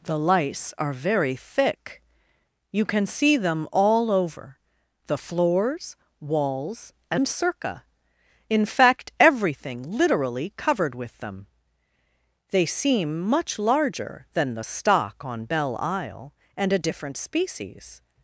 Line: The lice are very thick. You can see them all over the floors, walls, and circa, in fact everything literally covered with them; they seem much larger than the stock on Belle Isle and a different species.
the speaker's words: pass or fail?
pass